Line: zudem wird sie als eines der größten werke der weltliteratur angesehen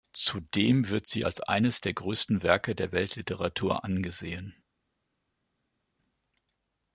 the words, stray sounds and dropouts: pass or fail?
pass